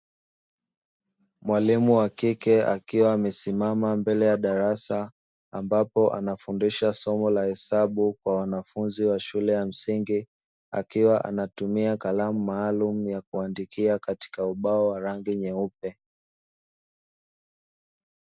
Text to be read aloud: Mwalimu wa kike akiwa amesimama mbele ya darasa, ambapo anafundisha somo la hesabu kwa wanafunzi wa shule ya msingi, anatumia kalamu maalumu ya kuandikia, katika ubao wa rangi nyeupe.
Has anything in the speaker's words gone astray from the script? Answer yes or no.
yes